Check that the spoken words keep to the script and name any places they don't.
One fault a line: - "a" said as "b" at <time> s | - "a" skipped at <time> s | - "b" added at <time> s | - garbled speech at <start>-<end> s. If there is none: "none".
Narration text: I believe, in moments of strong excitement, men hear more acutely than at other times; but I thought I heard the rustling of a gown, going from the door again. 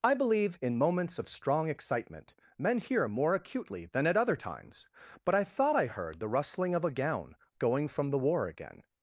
- "door" said as "war" at 8.2 s